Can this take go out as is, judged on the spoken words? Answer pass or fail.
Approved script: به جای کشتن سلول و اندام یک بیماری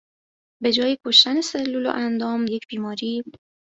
pass